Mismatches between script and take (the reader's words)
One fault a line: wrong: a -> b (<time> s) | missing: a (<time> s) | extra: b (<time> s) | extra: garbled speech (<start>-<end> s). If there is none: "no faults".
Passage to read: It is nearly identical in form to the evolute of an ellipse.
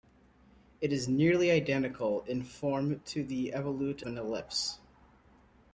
missing: of (4.0 s)